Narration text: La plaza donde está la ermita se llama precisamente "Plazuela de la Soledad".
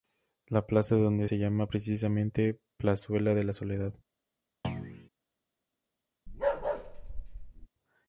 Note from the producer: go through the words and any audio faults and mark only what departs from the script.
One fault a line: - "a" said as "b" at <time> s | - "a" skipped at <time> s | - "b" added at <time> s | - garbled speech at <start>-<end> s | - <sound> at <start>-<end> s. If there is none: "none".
- "está la ermita" skipped at 1.2 s
- thud at 4.6-5.1 s
- bark at 6.3-7.7 s